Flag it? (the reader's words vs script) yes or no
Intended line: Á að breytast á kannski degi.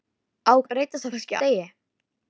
no